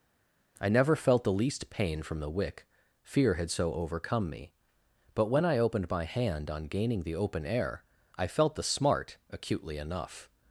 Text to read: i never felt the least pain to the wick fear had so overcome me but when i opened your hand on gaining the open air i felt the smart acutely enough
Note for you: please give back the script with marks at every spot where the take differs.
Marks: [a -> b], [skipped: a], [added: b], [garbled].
i never felt the least pain [to -> from] the wick fear had so overcome me but when i opened [your -> my] hand on gaining the open air i felt the smart acutely enough